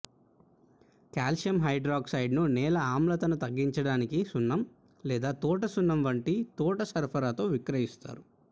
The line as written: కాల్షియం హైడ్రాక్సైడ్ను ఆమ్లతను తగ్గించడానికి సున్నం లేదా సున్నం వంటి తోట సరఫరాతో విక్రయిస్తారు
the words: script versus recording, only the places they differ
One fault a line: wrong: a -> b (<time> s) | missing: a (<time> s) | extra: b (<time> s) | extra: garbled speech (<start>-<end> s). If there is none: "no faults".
extra: నేల (2.5 s)
extra: తోట (5.4 s)